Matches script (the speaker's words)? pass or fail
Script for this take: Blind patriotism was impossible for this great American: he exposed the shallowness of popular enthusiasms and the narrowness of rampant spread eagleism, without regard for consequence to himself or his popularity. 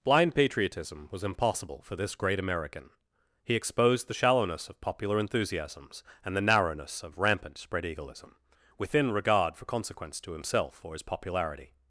fail